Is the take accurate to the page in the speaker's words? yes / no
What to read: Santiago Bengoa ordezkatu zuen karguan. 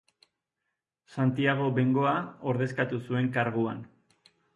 yes